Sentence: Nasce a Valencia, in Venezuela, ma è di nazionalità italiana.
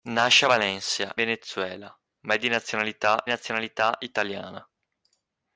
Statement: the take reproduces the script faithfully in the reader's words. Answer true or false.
false